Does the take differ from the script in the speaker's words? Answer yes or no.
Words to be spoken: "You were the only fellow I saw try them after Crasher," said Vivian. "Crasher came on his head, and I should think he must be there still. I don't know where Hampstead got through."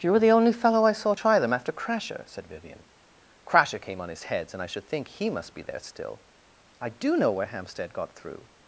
yes